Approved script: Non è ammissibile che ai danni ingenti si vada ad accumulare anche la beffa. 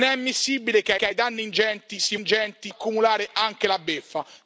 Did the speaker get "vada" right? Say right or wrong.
wrong